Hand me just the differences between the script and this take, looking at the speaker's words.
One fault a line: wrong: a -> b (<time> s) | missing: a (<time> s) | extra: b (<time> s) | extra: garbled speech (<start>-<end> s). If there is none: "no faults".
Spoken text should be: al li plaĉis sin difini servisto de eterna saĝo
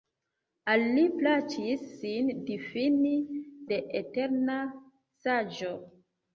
missing: servisto (3.1 s)